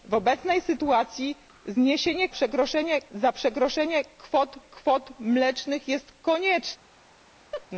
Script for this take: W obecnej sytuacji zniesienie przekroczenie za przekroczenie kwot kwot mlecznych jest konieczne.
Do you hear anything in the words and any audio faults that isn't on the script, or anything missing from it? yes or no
yes